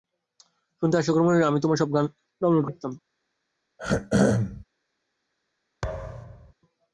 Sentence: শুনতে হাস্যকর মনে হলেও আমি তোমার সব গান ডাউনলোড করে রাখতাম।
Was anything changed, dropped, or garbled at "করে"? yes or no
yes